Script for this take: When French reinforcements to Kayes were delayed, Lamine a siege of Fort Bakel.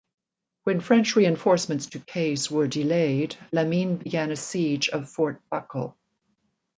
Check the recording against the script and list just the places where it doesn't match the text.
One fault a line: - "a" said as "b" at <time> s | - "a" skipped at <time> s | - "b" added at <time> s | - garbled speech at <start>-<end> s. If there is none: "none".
- "began" added at 4.0 s